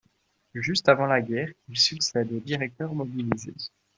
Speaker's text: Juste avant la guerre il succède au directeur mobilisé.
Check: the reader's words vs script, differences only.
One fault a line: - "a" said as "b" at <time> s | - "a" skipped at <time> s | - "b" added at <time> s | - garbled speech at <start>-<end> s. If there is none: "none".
none